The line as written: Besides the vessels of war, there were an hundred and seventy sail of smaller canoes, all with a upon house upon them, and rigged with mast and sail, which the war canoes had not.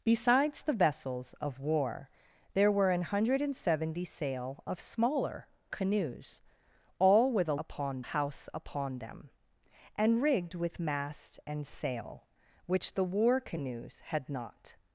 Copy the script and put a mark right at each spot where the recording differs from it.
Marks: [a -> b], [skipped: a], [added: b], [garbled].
Besides the vessels of war, there were an hundred and seventy sail of smaller canoes, all with a upon house upon them, and rigged with mast and sail, which the war canoes had not.